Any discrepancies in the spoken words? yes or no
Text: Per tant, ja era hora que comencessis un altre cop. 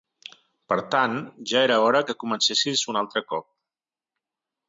no